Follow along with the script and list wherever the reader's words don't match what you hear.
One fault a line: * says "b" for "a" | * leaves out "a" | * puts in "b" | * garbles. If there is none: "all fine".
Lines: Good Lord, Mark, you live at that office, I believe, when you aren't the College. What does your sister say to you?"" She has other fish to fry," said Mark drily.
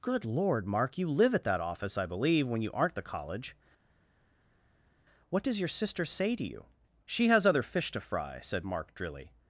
all fine